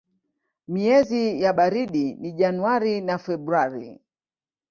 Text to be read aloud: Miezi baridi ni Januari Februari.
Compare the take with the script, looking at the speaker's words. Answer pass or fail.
fail